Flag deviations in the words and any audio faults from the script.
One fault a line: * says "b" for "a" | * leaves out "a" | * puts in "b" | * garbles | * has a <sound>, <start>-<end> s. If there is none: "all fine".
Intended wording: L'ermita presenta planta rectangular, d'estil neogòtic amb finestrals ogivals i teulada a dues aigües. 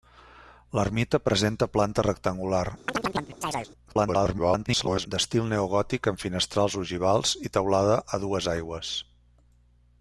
* has a chirp, 2.9-3.7 s
* garbles